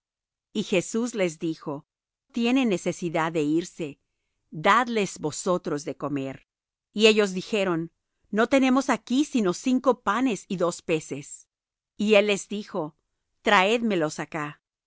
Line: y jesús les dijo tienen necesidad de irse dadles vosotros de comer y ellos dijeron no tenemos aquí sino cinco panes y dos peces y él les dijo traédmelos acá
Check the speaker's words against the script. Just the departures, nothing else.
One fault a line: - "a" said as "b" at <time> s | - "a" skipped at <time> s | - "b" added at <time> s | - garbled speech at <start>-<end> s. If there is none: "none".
none